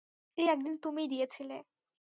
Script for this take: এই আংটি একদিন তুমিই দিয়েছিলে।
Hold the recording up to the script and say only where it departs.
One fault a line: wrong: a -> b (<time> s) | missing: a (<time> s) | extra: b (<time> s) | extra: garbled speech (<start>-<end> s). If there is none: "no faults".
missing: আংটি (0.5 s)